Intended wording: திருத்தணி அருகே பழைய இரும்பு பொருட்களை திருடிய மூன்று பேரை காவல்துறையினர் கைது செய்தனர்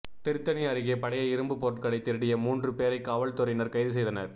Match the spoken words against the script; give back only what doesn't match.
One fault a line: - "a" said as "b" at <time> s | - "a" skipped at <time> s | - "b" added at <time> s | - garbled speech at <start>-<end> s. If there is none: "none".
none